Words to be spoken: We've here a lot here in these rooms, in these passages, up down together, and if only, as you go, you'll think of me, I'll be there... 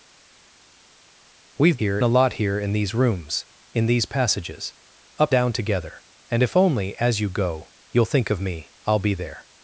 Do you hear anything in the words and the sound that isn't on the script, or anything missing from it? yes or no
no